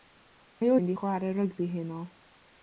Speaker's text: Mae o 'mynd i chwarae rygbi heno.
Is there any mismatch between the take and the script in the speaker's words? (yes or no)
no